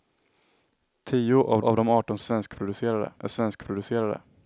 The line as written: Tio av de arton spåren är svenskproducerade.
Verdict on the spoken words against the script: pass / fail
fail